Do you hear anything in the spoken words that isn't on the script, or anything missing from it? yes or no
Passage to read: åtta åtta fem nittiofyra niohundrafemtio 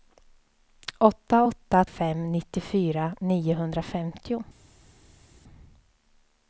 no